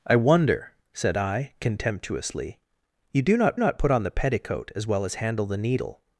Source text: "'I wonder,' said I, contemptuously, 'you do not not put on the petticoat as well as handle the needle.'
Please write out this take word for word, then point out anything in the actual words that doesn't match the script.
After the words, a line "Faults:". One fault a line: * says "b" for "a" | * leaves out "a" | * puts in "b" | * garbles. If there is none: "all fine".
"'I wonder,' said I, contemptuously, 'you do not not put on the petticoat as well as handle the needle.'
Faults:
all fine